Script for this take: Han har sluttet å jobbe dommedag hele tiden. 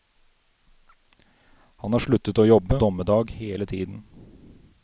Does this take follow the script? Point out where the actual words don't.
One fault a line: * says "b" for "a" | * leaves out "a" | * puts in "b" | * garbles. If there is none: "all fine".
all fine